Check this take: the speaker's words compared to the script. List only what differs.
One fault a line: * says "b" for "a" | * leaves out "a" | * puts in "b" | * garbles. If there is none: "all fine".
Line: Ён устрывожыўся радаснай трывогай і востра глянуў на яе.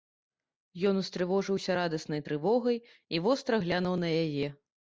all fine